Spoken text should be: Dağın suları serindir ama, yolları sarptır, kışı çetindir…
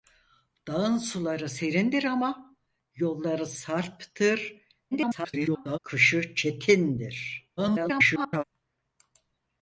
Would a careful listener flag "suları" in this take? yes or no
no